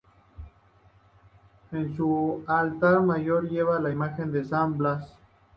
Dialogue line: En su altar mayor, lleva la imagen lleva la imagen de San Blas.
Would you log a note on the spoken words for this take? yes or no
yes